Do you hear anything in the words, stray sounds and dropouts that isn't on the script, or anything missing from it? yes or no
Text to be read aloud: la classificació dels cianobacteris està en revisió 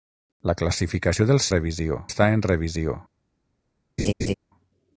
yes